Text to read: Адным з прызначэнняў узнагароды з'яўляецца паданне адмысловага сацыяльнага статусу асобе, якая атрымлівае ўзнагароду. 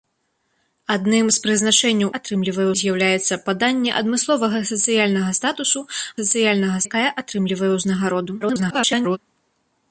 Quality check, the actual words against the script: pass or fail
fail